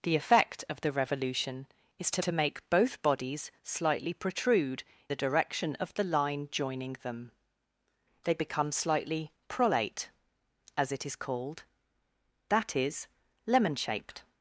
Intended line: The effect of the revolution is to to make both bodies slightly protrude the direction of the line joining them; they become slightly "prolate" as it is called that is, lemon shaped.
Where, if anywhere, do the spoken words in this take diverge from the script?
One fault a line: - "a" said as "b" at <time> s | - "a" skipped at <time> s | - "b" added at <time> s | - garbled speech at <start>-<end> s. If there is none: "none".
none